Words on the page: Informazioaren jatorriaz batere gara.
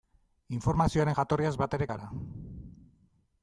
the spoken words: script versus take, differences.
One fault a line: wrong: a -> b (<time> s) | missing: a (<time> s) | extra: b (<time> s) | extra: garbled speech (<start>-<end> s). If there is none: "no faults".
no faults